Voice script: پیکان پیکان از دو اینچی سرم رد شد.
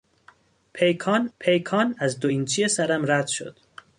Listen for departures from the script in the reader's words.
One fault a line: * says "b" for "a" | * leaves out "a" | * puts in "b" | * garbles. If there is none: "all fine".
all fine